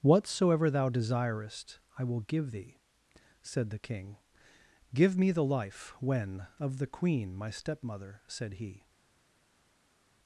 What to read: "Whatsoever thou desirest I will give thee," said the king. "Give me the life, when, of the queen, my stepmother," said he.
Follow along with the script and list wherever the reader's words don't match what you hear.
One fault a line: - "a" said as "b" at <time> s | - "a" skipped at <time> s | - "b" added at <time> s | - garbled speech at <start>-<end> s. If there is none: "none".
none